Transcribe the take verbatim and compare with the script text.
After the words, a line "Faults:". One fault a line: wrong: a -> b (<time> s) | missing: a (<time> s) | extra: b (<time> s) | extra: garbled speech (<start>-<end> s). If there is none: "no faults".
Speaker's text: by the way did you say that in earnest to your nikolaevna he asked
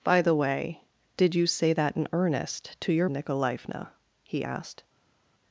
by the way did you say that in earnest to your nikolaevna he asked
Faults:
no faults